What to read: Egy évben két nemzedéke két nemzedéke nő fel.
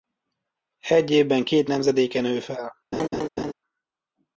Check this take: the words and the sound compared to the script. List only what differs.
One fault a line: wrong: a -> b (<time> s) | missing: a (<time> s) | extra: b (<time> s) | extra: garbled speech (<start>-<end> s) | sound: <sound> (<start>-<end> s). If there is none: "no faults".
missing: két nemzedéke (2.2 s)
sound: laugh (2.9-3.5 s)